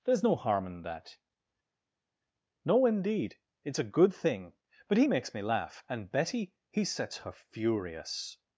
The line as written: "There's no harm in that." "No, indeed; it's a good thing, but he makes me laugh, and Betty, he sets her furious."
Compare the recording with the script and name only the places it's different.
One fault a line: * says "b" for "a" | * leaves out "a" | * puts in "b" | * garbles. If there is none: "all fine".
all fine